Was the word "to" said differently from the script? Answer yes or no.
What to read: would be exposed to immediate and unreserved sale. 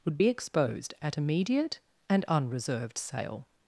yes